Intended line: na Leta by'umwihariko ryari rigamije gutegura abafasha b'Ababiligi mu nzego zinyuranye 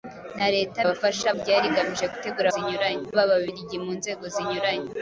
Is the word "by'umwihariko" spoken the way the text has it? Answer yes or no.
no